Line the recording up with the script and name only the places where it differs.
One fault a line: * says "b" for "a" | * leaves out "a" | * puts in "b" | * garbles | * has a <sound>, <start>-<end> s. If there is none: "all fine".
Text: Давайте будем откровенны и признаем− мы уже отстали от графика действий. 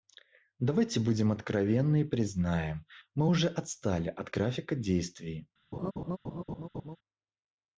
* has a laugh, 5.7-7.0 s